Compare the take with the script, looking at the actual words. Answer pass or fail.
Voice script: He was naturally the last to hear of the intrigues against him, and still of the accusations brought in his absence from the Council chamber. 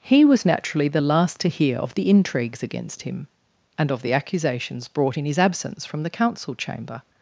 fail